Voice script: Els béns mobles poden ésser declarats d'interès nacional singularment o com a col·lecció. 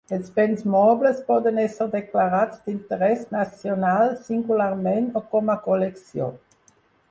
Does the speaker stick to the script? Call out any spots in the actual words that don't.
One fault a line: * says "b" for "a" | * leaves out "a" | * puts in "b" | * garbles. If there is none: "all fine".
all fine